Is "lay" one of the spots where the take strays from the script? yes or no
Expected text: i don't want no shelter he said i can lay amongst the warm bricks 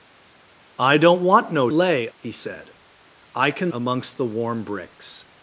yes